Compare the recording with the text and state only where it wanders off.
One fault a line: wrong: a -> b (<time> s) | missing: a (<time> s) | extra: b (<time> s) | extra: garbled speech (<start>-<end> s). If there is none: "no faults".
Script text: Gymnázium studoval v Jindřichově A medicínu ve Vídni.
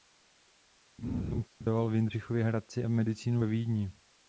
extra: Hradci (2.4 s)